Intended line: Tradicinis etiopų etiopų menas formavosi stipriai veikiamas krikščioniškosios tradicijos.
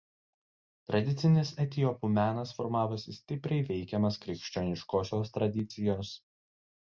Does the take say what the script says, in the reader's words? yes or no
no